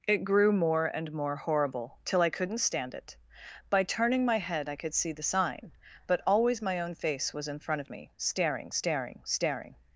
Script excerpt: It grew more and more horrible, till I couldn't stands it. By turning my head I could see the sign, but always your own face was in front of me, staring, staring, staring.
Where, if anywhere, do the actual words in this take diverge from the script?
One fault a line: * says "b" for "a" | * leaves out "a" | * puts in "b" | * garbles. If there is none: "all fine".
* says "stand" for "stands"
* says "my" for "your"